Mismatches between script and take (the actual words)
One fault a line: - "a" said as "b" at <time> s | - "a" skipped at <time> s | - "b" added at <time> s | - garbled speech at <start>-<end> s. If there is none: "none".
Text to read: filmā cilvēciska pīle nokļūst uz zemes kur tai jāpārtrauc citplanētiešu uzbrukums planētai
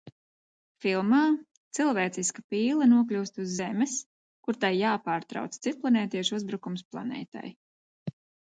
none